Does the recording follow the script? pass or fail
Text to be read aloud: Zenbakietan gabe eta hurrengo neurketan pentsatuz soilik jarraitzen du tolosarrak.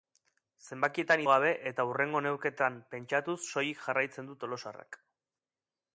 pass